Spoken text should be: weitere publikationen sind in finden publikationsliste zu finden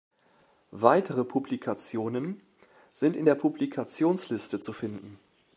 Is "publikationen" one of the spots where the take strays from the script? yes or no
no